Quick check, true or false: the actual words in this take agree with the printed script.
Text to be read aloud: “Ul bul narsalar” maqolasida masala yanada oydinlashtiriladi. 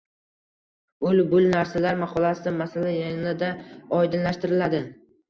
true